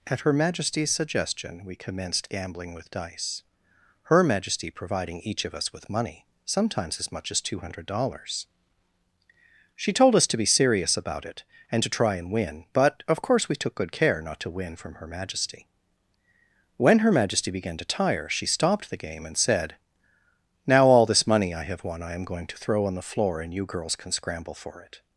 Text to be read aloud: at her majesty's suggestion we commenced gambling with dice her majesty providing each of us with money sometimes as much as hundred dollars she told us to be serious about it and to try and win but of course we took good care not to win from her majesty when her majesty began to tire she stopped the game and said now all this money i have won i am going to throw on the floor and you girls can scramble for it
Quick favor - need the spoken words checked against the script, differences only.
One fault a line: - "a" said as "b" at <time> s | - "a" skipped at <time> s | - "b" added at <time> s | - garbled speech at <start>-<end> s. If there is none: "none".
- "two" added at 7.4 s